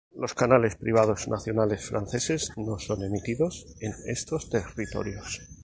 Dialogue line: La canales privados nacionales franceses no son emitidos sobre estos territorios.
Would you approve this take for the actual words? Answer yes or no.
no